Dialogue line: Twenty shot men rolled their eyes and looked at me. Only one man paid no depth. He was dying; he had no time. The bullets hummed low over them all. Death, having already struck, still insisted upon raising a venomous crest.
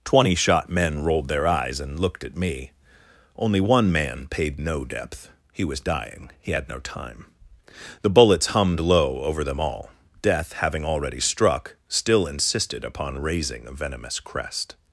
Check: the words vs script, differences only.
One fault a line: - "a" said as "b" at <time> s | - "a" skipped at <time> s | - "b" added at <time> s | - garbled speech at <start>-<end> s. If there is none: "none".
none